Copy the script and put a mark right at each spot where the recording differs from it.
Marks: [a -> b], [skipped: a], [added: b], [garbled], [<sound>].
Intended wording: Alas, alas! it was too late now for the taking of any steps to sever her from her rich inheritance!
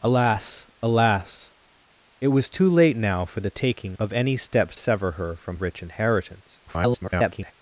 Alas, alas! it was too late now for the taking of any steps [skipped: to] sever her from [skipped: her] rich inheritance! [garbled]